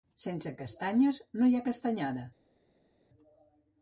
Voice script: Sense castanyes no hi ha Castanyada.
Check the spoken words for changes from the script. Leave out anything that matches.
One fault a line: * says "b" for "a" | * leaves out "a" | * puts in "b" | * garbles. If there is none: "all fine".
all fine